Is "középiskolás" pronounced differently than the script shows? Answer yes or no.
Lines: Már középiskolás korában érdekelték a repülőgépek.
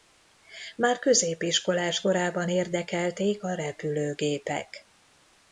no